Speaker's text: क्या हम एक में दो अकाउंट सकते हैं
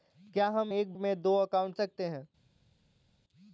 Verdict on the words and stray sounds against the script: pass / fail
pass